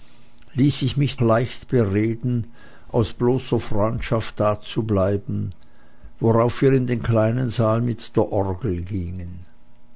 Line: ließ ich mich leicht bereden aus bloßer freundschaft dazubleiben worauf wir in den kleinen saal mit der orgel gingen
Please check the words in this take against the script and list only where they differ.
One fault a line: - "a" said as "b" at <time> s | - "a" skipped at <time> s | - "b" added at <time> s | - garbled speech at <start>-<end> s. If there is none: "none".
none